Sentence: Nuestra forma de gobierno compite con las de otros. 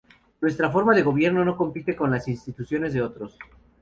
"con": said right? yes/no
yes